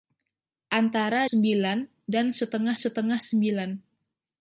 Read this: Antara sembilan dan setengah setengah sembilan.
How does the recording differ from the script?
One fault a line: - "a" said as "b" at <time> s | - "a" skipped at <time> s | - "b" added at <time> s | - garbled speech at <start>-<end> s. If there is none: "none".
none